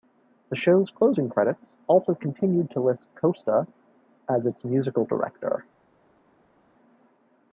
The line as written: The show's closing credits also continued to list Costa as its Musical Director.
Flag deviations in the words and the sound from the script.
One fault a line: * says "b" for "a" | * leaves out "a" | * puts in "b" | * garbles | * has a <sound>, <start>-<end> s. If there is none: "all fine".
all fine